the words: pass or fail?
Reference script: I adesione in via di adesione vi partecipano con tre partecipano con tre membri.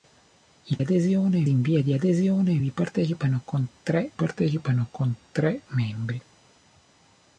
pass